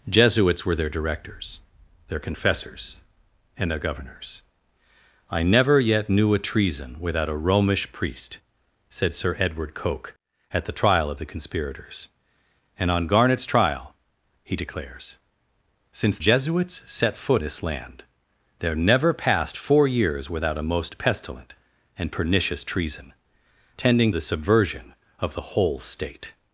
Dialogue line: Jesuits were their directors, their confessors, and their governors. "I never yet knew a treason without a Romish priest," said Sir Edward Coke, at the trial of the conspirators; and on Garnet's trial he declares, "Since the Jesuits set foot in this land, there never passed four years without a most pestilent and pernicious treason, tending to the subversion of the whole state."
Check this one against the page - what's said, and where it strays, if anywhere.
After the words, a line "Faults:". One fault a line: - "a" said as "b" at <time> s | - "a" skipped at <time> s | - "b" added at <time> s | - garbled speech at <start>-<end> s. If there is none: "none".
Jesuits were their directors, their confessors, and their governors. "I never yet knew a treason without a Romish priest," said Sir Edward Coke, at the trial of the conspirators; and on Garnet's trial he declares, "Since Jesuits set foot this land, there never passed four years without a most pestilent and pernicious treason, tending the subversion of the whole state."
Faults:
- "the" skipped at 16.2 s
- "in" skipped at 17.4 s
- "to" skipped at 24.1 s